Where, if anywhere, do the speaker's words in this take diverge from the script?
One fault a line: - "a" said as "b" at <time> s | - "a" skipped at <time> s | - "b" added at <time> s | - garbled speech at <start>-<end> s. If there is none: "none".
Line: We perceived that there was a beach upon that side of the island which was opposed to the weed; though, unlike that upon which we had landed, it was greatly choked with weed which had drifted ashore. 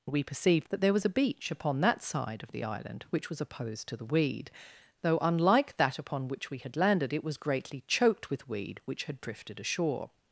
none